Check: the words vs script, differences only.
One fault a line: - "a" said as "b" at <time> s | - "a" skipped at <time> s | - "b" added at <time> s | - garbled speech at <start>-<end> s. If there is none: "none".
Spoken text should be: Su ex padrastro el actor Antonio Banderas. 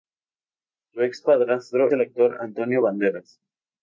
none